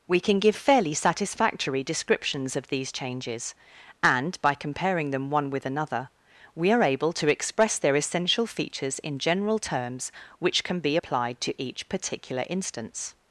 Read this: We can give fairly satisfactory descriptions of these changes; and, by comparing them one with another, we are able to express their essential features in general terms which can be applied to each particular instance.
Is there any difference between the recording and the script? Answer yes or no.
no